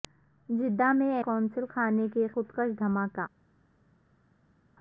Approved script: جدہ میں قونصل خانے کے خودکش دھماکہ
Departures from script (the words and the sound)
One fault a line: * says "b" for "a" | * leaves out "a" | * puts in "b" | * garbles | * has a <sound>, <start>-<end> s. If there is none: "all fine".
all fine